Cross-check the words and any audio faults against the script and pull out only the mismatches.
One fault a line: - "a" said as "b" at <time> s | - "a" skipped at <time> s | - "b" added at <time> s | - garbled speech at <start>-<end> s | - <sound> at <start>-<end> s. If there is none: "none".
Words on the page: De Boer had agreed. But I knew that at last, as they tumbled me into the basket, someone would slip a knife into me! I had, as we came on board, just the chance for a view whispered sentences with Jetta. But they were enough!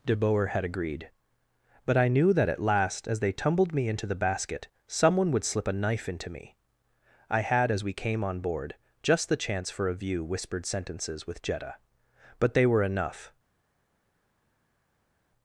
none